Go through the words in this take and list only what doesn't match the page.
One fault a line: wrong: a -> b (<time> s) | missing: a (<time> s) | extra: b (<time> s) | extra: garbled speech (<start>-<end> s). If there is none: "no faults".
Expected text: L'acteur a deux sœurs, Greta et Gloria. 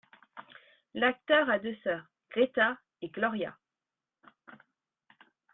no faults